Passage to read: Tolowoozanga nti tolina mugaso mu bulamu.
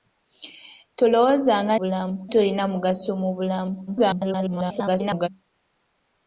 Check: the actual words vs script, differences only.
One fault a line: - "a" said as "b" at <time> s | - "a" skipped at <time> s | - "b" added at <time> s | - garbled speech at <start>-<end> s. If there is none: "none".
- "nti" said as "bulamu" at 1.8 s
- garbled speech at 3.9-5.3 s